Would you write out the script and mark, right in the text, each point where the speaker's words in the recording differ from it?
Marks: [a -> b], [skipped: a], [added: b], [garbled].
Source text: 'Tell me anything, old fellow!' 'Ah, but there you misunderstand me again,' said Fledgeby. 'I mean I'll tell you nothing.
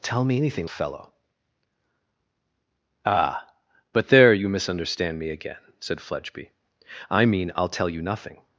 'Tell me anything, [skipped: old] fellow!' 'Ah, but there you misunderstand me again,' said Fledgeby. 'I mean I'll tell you nothing.